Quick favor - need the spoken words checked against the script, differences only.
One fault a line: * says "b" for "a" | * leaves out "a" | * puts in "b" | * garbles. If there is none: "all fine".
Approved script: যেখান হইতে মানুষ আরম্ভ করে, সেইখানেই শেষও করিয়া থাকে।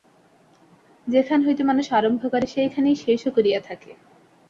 all fine